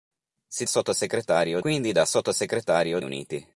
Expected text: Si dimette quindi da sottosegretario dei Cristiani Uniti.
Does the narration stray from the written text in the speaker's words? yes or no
yes